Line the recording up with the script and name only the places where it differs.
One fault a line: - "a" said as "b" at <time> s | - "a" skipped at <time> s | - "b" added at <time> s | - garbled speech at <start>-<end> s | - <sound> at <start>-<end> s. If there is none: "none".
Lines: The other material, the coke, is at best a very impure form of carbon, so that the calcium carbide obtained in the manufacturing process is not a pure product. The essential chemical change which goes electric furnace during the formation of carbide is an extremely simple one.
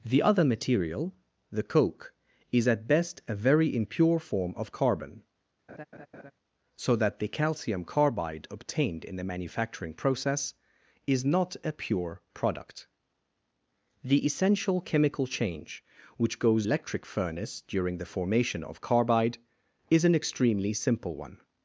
- laugh at 5.7-6.3 s